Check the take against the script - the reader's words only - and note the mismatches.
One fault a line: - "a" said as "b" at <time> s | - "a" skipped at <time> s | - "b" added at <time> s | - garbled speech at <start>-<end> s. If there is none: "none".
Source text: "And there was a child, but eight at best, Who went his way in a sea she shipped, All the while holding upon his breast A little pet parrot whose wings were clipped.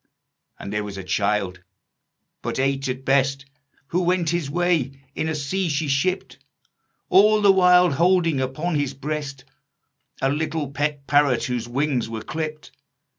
none